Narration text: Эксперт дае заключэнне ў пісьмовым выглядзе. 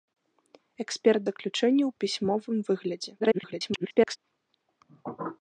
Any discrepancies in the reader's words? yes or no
yes